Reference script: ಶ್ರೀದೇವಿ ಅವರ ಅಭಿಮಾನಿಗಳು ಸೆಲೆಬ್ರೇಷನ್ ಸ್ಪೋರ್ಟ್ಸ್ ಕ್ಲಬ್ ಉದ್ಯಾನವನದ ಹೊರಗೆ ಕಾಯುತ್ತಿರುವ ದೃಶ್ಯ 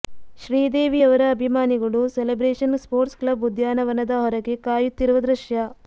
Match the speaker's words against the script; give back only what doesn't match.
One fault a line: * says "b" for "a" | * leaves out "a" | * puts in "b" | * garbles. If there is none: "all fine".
all fine